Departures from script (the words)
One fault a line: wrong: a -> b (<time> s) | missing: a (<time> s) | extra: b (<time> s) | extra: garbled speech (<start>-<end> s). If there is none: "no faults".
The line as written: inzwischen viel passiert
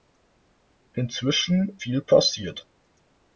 no faults